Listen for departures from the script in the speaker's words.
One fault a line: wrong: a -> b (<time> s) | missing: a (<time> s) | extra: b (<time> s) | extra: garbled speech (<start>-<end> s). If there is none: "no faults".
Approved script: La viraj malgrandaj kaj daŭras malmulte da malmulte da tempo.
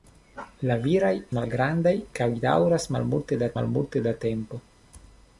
no faults